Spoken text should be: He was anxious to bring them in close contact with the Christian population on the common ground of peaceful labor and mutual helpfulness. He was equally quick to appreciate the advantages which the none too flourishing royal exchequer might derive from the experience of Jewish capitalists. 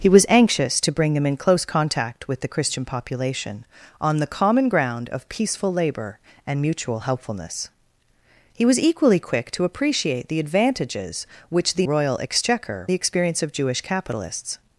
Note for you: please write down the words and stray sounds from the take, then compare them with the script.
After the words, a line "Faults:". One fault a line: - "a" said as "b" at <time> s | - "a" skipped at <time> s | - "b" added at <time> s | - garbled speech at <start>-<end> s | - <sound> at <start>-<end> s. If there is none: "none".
He was anxious to bring them in close contact with the Christian population on the common ground of peaceful labor and mutual helpfulness. He was equally quick to appreciate the advantages which the royal exchequer the experience of Jewish capitalists.
Faults:
- "none too flourishing" skipped at 11.8 s
- "might derive from" skipped at 12.9 s